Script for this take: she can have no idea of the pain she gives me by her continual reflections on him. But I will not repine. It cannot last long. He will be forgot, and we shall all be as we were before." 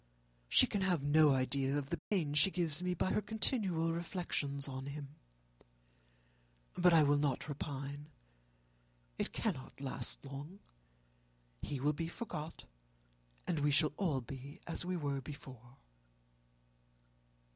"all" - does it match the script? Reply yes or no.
yes